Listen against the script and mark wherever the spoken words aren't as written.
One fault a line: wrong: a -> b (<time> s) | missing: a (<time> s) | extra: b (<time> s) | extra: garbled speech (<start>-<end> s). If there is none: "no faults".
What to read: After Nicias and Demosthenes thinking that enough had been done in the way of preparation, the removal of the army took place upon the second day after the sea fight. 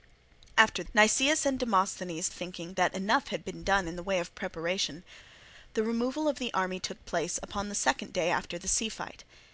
no faults